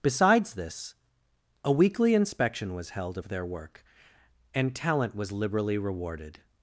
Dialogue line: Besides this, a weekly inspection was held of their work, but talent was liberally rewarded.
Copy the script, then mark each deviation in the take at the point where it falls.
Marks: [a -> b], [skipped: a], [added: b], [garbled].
Besides this, a weekly inspection was held of their work, [but -> and] talent was liberally rewarded.